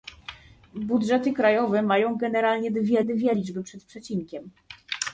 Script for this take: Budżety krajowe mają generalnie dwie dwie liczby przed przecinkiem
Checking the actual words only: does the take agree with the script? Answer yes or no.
yes